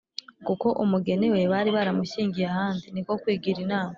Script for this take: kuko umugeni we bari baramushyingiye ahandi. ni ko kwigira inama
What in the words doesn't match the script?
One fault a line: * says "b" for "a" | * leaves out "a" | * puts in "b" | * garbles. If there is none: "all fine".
all fine